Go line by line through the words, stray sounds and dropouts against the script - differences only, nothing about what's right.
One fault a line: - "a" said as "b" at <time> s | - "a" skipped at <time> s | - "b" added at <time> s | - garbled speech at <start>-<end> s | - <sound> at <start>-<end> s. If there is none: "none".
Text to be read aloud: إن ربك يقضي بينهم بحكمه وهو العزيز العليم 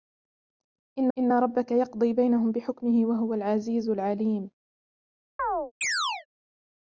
- "إن" added at 1.2 s
- chirp at 5.4-6.3 s